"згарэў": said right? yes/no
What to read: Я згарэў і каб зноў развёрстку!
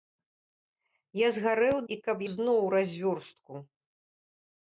yes